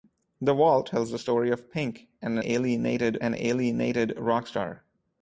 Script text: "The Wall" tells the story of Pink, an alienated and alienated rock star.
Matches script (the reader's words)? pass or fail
pass